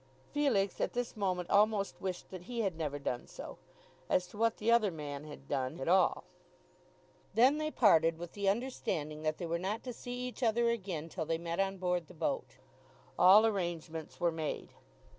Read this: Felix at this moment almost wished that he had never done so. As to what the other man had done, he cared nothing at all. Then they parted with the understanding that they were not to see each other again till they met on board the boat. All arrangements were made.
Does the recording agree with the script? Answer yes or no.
no